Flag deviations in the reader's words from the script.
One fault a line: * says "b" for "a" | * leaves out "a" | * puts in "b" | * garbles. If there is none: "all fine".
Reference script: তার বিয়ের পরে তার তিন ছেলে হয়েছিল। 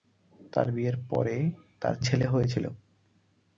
* leaves out "তিন"